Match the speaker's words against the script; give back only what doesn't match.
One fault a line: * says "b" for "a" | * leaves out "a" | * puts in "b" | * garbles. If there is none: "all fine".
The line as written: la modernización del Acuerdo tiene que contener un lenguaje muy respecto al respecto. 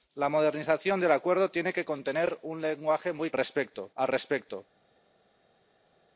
all fine